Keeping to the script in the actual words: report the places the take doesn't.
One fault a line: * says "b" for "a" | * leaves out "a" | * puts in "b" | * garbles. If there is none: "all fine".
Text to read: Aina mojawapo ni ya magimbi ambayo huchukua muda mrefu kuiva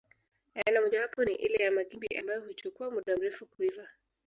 * puts in "ile"